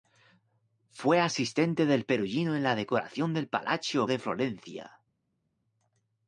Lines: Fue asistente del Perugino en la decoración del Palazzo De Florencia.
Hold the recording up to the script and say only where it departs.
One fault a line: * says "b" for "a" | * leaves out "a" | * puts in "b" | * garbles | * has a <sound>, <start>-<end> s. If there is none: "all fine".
all fine